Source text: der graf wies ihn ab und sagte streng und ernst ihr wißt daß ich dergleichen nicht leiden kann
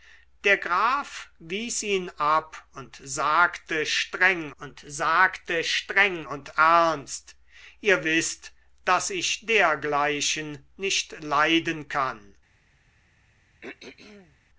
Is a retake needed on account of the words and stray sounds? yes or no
yes